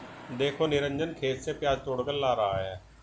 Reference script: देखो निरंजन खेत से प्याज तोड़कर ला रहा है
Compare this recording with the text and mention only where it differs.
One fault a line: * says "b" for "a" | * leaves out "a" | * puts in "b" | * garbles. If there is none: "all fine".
all fine